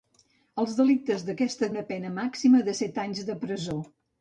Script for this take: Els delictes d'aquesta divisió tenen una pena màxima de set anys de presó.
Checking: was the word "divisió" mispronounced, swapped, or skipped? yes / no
yes